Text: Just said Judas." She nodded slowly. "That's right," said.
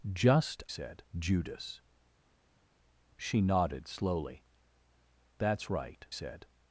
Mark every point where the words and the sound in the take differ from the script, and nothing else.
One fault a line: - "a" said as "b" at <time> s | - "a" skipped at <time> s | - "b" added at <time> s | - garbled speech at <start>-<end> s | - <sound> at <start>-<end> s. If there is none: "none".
none